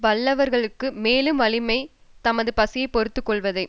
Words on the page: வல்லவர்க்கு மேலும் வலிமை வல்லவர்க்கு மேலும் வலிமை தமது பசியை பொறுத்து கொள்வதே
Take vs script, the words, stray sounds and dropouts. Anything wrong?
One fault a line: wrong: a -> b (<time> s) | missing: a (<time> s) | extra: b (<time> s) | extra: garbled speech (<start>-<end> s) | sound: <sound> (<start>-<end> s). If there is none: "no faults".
missing: வல்லவர்க்கு மேலும் வலிமை (1.8 s)